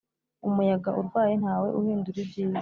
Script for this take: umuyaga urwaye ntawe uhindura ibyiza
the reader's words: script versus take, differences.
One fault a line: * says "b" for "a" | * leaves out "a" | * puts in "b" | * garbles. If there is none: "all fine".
all fine